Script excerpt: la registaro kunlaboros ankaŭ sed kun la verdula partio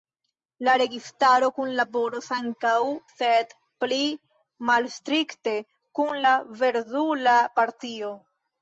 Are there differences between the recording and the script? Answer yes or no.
yes